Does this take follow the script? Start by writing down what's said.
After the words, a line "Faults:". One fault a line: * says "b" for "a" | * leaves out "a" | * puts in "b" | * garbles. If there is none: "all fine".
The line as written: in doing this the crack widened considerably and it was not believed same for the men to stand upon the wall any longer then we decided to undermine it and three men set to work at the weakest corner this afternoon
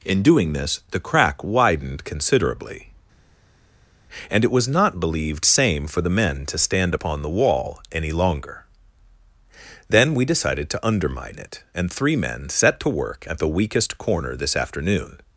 in doing this the crack widened considerably and it was not believed same for the men to stand upon the wall any longer then we decided to undermine it and three men set to work at the weakest corner this afternoon
Faults:
all fine